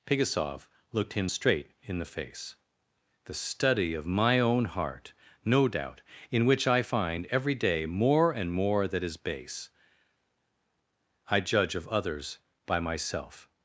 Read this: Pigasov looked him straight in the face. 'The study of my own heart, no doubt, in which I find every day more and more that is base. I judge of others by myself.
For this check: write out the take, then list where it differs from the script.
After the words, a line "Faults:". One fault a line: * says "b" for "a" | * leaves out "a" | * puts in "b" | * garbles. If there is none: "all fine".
Pigasov looked him straight in the face. 'The study of my own heart, no doubt, in which I find every day more and more that is base. I judge of others by myself.
Faults:
all fine